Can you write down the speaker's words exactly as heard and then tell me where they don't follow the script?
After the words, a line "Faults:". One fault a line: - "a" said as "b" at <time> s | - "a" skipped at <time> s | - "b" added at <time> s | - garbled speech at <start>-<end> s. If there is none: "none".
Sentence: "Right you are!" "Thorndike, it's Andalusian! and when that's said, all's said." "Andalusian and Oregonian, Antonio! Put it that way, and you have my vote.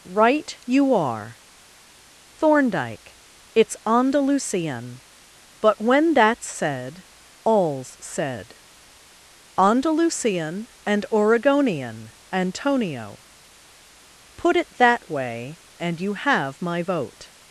"Right you are!" "Thorndike, it's Andalusian! but when that's said, all's said." "Andalusian and Oregonian, Antonio! Put it that way, and you have my vote.
Faults:
- "and" said as "but" at 5.6 s